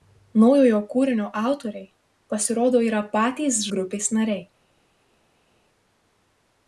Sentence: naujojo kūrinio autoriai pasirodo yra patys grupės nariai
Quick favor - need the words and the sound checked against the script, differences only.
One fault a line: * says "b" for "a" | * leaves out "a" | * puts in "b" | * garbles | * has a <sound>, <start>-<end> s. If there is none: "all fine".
all fine